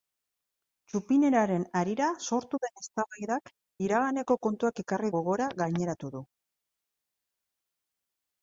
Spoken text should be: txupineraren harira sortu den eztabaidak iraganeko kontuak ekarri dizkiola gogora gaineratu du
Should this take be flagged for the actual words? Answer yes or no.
yes